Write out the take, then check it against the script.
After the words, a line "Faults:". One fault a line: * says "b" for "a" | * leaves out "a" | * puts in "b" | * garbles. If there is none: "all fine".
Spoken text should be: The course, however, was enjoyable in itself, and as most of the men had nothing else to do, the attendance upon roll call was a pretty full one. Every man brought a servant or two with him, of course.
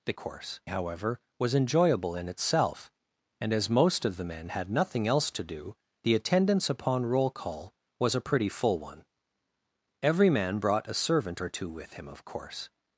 The course, however, was enjoyable in itself, and as most of the men had nothing else to do, the attendance upon roll call was a pretty full one. Every man brought a servant or two with him, of course.
Faults:
all fine